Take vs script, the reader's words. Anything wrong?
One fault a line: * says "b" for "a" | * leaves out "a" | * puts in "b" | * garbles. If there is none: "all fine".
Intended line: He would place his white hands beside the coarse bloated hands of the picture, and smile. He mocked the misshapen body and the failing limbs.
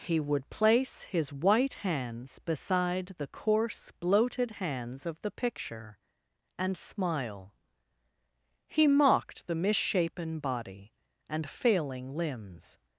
* leaves out "the"